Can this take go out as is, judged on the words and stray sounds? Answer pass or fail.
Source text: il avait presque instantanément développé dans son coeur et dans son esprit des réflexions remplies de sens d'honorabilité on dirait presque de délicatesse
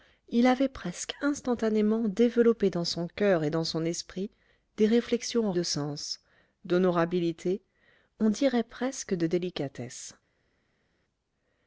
fail